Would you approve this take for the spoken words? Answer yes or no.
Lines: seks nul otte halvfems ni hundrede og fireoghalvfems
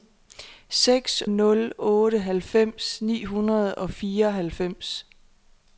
yes